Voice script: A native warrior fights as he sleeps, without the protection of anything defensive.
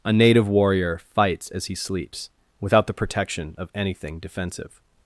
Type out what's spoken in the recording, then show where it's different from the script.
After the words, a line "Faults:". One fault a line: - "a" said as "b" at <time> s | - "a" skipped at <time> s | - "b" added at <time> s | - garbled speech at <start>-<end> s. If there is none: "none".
A native warrior fights as he sleeps, without the protection of anything defensive.
Faults:
none